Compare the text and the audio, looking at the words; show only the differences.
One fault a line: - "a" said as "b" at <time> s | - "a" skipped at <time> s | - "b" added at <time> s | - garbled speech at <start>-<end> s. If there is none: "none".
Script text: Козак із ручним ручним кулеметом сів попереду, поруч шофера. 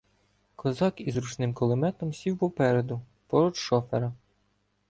- "ручним" skipped at 1.5 s